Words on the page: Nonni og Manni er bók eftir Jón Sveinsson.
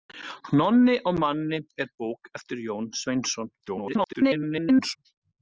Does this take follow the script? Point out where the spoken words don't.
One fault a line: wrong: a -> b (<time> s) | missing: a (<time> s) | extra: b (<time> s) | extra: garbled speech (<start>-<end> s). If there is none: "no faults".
extra: garbled speech (3.6-5.0 s)